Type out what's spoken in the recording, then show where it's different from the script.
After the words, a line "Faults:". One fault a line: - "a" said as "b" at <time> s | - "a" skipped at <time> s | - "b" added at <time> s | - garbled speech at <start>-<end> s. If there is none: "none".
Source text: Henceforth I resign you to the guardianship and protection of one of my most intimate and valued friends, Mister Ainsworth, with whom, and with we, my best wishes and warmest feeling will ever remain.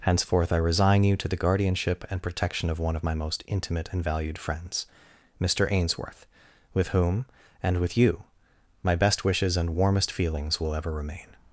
Henceforth I resign you to the guardianship and protection of one of my most intimate and valued friends, Mister Ainsworth, with whom, and with you, my best wishes and warmest feelings will ever remain.
Faults:
- "we" said as "you" at 8.0 s
- "feeling" said as "feelings" at 10.1 s